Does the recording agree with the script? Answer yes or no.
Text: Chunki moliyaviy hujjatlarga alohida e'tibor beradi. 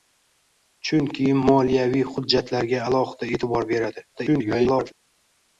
no